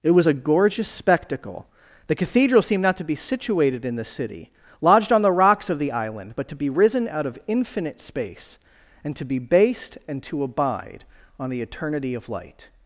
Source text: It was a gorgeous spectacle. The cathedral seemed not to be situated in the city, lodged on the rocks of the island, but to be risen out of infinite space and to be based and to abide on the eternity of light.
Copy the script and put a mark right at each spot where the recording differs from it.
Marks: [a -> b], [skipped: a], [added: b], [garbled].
It was a gorgeous spectacle. The cathedral seemed not to be situated in the city, lodged on the rocks of the island, but to be risen out of infinite space and to be based and to abide on the eternity of light.